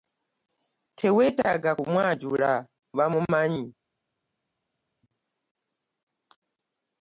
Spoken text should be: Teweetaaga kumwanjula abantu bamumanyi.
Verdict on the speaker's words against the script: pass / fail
fail